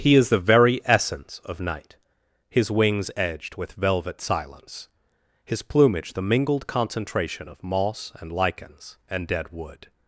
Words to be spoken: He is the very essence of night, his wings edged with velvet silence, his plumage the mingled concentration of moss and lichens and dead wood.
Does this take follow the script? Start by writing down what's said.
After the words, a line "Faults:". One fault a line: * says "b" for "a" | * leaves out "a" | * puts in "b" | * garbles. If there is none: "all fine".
He is the very essence of night, his wings edged with velvet silence, his plumage the mingled concentration of moss and lichens and dead wood.
Faults:
all fine